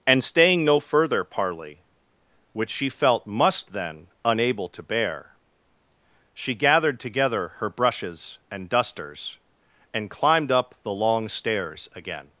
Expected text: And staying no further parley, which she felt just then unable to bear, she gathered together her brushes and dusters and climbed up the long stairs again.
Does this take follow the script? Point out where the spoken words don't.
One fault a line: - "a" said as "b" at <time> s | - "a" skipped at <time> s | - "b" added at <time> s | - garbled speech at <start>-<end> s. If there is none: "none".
- "just" said as "must" at 3.3 s